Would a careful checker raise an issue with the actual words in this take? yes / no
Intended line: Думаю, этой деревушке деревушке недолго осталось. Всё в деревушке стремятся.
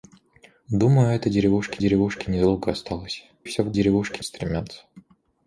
no